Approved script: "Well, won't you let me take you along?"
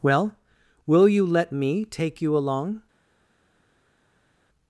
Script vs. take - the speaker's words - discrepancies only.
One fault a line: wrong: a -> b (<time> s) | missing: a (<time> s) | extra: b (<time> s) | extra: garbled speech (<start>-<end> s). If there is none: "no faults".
wrong: won't -> will (0.9 s)